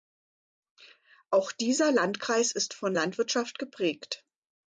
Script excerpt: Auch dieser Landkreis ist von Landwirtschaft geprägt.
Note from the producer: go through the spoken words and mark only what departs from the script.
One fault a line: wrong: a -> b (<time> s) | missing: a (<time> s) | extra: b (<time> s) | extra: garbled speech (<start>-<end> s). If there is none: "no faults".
no faults